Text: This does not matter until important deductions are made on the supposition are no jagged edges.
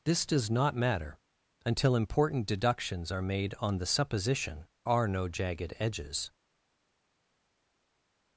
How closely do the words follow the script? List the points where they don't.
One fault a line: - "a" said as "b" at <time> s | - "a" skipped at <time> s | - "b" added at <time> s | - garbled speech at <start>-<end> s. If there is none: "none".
none